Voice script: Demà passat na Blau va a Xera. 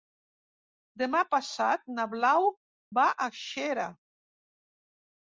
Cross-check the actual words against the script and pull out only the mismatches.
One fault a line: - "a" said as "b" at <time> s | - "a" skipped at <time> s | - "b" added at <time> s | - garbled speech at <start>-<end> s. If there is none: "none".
none